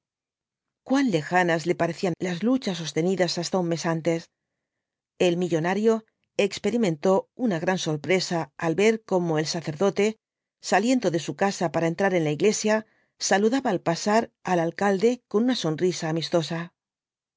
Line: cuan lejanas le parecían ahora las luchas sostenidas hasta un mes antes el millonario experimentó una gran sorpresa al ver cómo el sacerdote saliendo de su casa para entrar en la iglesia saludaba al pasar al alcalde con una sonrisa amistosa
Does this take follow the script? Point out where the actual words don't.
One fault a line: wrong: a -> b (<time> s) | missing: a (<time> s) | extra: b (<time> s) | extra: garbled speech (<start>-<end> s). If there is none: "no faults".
missing: ahora (2.1 s)